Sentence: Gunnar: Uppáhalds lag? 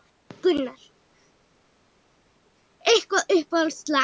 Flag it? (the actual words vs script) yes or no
yes